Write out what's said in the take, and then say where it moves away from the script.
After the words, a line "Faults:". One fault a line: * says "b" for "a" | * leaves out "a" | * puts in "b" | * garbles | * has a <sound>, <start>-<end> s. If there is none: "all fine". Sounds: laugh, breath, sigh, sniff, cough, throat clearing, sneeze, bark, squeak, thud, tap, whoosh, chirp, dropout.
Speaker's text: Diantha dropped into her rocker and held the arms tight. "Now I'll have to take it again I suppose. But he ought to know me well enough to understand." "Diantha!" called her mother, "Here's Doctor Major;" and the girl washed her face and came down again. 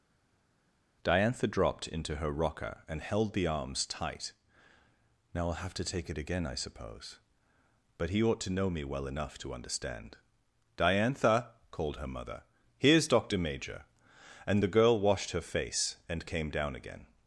Diantha dropped into her rocker and held the arms tight. "Now I'll have to take it again I suppose. But he ought to know me well enough to understand." "Diantha!" called her mother, "Here's Doctor Major;" and the girl washed her face and came down again.
Faults:
all fine